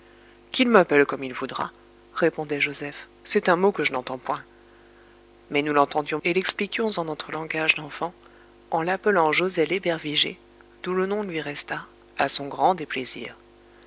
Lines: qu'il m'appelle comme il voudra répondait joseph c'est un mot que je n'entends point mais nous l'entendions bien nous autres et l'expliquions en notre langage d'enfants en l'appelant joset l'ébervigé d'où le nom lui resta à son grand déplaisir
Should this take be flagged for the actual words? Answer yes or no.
yes